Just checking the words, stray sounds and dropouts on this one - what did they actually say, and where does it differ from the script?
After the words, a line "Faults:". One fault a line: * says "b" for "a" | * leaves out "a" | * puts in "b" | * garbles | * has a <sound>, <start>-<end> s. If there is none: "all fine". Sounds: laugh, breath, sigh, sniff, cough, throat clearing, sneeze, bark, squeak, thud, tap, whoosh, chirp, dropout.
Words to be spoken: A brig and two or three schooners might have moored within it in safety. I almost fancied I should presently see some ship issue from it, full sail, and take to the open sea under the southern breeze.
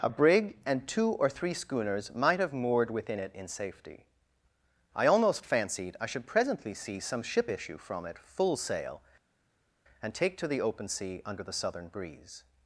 A brig and two or three schooners might have moored within it in safety. I almost fancied I should presently see some ship issue from it, full sail, and take to the open sea under the southern breeze.
Faults:
all fine